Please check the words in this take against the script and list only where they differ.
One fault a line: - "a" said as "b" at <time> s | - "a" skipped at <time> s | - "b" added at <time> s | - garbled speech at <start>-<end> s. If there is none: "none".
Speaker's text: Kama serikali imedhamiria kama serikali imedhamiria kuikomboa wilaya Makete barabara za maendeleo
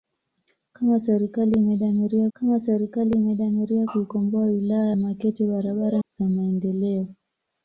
none